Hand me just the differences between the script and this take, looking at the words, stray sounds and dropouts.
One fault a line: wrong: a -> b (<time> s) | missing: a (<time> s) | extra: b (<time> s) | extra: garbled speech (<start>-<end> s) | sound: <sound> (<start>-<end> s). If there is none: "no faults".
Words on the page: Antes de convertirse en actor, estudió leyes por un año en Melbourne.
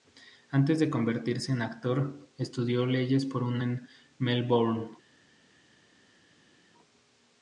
missing: año (3.6 s)